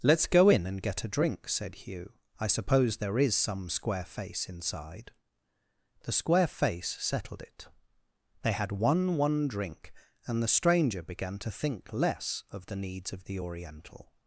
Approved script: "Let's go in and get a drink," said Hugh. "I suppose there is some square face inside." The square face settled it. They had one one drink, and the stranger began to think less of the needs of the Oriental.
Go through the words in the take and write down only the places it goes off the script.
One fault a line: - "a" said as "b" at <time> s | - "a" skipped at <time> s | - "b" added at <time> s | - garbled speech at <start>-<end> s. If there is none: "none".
none